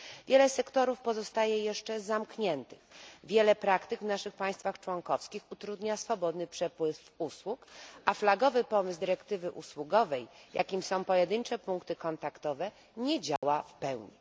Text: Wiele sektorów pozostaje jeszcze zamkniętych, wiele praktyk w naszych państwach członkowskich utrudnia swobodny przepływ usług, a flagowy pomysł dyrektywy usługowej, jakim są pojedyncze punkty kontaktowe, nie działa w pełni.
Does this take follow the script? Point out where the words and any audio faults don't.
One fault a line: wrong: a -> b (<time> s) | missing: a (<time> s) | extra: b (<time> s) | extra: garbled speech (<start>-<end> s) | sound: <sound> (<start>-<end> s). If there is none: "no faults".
sound: dropout (13.4-13.4 s)